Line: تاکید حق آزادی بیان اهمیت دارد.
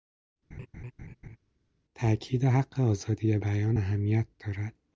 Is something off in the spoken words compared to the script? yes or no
no